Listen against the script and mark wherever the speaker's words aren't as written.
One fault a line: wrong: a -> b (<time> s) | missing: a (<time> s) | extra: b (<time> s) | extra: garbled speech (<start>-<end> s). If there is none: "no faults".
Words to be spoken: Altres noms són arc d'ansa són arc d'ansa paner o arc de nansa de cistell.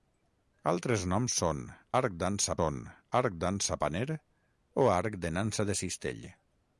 no faults